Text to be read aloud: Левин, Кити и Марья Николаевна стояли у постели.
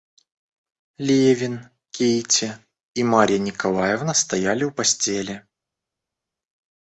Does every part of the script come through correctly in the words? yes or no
yes